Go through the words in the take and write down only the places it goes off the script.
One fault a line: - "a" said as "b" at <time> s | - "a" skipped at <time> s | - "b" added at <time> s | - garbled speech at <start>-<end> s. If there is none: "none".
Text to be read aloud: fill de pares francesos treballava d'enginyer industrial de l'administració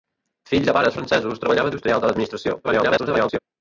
- "d'enginyer" skipped at 1.7 s
- garbled speech at 2.6-3.4 s